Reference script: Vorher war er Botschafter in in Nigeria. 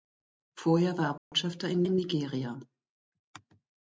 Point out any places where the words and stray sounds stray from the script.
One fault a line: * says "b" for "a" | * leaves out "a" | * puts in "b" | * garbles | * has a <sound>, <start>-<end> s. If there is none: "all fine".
* has a dropout, 1.2-1.3 s